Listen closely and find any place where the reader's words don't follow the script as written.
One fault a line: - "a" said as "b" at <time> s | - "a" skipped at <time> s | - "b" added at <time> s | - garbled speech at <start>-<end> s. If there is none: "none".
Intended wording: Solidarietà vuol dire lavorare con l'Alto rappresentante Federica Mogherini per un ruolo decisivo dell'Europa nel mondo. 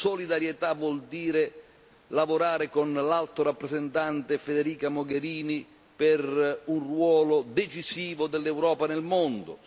none